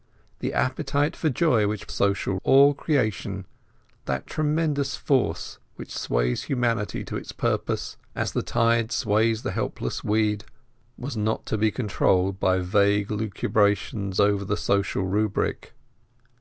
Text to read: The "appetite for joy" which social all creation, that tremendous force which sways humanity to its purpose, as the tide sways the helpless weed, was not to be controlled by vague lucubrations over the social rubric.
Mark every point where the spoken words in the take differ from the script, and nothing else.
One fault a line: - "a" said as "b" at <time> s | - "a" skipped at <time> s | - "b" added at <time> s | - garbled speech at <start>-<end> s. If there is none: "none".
none